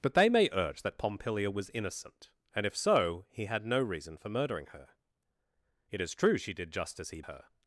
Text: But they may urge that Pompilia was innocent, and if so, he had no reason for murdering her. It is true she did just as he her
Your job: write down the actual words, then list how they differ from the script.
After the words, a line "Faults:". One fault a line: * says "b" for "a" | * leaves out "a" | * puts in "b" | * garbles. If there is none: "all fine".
But they may urge that Pompilia was innocent, and if so, he had no reason for murdering her. It is true she did just as he her
Faults:
all fine